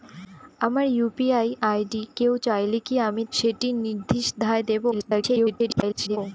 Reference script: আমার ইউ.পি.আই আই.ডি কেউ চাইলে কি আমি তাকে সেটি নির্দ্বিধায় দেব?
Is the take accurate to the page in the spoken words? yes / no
no